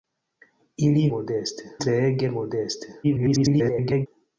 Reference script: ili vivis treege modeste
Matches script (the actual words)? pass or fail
fail